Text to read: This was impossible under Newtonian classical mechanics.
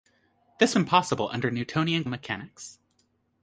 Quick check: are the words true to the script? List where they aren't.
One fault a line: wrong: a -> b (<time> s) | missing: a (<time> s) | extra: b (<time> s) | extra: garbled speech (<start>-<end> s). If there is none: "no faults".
missing: was (0.8 s)
missing: classical (2.0 s)